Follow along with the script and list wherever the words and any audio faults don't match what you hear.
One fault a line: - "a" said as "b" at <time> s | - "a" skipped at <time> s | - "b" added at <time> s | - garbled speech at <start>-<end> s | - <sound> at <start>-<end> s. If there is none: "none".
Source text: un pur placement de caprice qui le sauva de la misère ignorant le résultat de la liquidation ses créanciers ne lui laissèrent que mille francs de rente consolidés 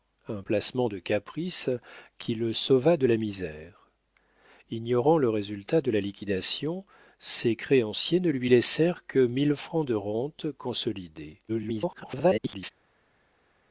- "pur" skipped at 0.4 s
- garbled speech at 11.5-12.7 s